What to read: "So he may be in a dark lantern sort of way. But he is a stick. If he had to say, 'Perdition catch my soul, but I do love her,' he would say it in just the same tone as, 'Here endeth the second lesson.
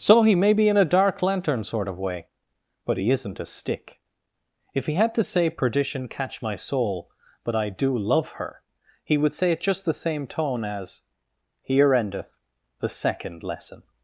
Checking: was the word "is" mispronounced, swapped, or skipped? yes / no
yes